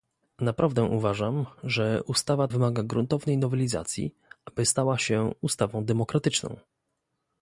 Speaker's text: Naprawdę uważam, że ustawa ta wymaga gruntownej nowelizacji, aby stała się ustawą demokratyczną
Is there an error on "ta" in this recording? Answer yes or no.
yes